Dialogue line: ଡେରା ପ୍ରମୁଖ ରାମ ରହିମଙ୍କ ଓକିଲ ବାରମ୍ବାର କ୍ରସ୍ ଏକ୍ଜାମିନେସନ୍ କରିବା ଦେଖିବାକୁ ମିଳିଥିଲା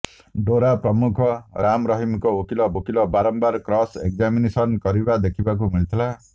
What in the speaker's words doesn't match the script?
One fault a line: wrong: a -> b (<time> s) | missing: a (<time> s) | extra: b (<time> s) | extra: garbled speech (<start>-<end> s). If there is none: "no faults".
extra: ଓକିଲ (2.7 s)